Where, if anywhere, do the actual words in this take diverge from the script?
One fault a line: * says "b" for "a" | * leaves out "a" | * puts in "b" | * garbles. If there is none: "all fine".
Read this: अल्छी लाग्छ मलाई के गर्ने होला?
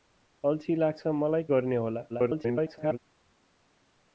* leaves out "के"
* garbles